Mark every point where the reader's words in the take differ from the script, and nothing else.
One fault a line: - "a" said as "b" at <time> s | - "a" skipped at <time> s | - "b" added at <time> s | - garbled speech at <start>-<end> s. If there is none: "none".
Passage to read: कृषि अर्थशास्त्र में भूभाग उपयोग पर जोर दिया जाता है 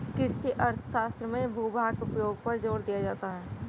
none